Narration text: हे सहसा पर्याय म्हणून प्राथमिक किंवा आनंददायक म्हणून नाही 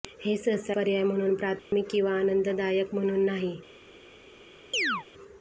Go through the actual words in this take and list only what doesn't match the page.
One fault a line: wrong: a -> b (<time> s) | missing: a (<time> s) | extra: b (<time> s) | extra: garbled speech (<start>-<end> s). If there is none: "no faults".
no faults